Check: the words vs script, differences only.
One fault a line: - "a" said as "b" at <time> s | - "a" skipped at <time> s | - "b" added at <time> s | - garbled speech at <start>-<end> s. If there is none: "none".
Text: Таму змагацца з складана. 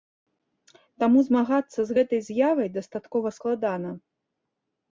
- "гэтай з'явай дастаткова" added at 2.0 s